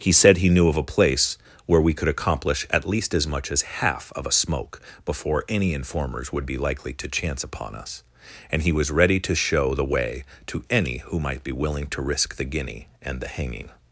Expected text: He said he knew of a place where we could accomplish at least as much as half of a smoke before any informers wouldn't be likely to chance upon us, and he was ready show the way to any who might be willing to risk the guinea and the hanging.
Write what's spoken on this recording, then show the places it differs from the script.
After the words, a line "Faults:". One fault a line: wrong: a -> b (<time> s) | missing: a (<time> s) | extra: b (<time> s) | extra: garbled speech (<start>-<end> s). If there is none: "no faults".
He said he knew of a place where we could accomplish at least as much as half of a smoke before any informers would be likely to chance upon us, and he was ready to show the way to any who might be willing to risk the guinea and the hanging.
Faults:
wrong: wouldn't -> would (6.3 s)
extra: to (9.2 s)